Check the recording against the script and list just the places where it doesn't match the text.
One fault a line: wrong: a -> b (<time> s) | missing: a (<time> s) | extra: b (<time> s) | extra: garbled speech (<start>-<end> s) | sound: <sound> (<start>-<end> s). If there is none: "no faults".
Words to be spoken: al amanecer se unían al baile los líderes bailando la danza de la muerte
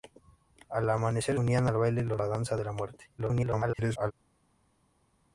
missing: se (1.4 s)
missing: líderes bailando (2.2 s)
extra: garbled speech (3.2-4.1 s)